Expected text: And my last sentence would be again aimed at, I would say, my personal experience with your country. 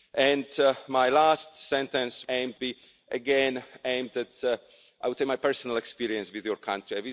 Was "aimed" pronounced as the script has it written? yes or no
yes